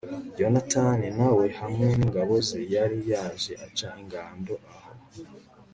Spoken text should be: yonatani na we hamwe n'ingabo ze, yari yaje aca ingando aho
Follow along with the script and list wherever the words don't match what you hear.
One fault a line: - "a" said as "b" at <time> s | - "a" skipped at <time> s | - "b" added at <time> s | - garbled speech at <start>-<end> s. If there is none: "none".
none